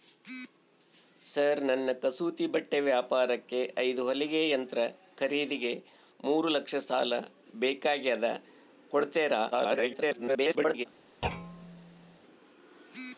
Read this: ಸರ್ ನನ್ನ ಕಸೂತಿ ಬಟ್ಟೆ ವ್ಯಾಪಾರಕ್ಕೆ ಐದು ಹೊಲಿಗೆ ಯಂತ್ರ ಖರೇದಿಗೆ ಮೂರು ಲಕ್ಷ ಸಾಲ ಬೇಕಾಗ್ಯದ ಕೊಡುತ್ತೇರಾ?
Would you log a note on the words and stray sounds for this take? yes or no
yes